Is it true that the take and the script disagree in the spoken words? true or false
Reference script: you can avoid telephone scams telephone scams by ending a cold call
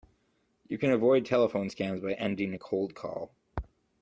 true